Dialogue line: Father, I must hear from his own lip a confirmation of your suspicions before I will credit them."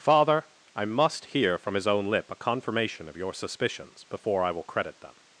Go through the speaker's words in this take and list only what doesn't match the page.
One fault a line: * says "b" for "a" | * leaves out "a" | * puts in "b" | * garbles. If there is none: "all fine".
all fine